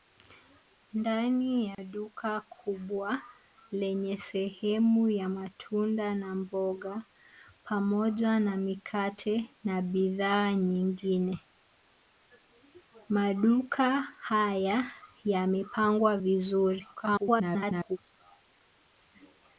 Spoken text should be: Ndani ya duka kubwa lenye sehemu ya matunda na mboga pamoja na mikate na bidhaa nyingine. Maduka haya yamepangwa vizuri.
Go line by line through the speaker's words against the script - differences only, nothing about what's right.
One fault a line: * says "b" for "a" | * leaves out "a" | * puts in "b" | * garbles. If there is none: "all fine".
* garbles